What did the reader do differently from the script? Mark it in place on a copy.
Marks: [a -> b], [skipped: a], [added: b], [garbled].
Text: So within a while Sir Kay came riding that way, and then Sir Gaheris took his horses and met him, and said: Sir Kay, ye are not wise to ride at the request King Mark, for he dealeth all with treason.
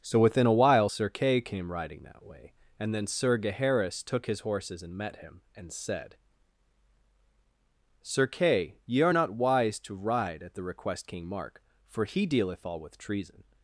So within a while Sir Kay came riding that way, and then Sir Gaheris took his horses and met him, and said: Sir Kay, ye are not wise to ride at the request King Mark, for he dealeth all with treason.